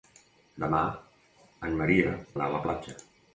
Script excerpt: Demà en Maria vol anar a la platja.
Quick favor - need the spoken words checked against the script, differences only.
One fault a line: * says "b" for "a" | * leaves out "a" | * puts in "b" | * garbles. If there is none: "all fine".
* leaves out "vol"